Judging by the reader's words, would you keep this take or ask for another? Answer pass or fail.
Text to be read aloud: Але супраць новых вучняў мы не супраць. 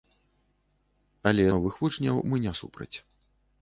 fail